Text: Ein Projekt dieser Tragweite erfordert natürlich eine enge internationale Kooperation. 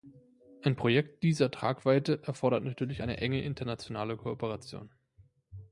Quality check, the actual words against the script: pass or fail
pass